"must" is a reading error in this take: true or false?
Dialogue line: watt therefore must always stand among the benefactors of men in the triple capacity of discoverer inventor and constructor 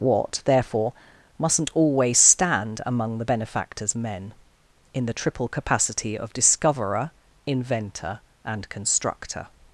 true